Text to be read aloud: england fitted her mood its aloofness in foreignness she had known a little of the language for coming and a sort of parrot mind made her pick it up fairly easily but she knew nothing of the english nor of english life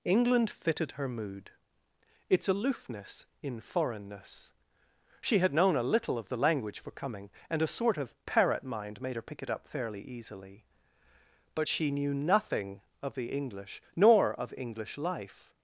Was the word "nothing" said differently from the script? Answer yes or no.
no